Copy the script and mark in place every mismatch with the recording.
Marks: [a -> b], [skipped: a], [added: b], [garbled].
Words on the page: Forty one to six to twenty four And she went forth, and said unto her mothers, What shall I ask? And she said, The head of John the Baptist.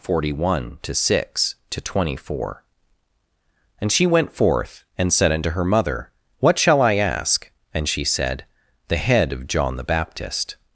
Forty one to six to twenty four And she went forth, and said unto her [mothers, -> mother] What shall I ask? And she said, The head of John the Baptist.